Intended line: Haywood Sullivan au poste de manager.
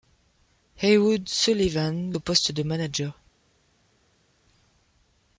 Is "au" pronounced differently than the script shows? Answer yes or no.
no